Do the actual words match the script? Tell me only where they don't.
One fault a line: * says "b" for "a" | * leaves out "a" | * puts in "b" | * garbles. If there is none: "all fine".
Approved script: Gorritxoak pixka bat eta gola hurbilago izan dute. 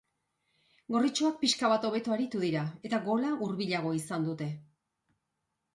* puts in "hobeto aritu dira"